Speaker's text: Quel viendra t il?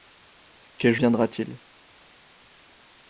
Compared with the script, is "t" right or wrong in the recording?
right